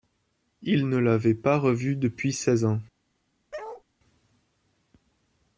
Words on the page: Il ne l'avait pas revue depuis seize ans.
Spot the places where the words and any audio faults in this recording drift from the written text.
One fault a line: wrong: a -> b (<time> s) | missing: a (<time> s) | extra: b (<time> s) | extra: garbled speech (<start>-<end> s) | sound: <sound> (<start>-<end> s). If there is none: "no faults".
sound: bark (3.5-3.8 s)